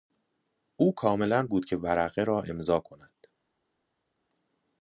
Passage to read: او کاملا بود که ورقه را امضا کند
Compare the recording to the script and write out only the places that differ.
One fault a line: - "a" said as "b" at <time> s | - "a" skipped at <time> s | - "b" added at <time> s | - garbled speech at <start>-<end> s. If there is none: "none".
none